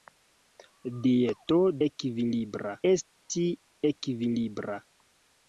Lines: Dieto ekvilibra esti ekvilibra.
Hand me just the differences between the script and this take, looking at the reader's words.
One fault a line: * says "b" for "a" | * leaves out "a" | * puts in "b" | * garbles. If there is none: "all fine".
all fine